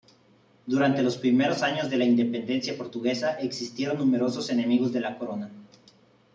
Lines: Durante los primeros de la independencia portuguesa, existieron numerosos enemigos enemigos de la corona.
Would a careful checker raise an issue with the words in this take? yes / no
yes